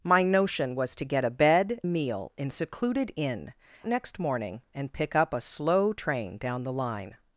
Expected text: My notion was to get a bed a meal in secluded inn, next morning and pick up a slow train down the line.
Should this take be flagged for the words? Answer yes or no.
no